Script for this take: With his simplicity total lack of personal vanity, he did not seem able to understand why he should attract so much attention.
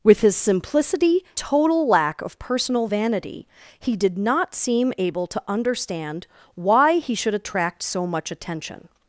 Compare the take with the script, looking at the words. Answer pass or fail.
pass